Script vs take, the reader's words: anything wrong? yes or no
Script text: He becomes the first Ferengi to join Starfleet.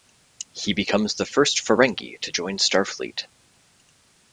no